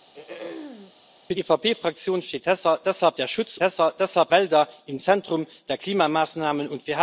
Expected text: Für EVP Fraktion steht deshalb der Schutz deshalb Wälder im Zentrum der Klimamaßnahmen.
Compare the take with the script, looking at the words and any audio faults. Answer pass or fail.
fail